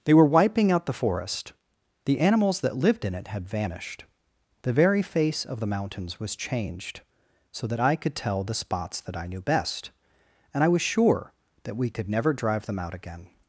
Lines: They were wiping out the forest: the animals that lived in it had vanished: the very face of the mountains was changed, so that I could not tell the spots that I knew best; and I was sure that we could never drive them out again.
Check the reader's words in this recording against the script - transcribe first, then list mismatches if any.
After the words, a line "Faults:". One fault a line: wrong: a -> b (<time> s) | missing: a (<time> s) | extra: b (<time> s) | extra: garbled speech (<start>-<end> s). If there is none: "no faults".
They were wiping out the forest: the animals that lived in it had vanished: the very face of the mountains was changed, so that I could tell the spots that I knew best; and I was sure that we could never drive them out again.
Faults:
missing: not (8.2 s)